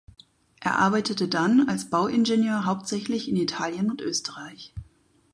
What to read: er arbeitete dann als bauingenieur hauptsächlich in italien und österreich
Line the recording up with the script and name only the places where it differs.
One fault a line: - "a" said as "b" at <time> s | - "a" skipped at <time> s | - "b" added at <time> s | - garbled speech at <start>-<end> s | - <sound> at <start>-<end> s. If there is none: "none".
none